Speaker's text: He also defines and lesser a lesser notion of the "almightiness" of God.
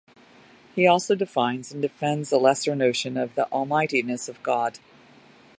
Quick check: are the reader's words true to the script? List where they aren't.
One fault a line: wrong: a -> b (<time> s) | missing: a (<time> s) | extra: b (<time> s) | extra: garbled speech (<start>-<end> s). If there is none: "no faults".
wrong: lesser -> defends (1.8 s)